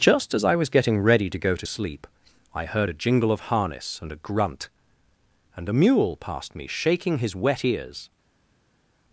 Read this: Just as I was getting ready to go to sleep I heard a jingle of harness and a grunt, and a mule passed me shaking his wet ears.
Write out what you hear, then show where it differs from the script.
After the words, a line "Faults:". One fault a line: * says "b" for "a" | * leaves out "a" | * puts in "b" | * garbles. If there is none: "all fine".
Just as I was getting ready to go to sleep I heard a jingle of harness and a grunt, and a mule passed me shaking his wet ears.
Faults:
all fine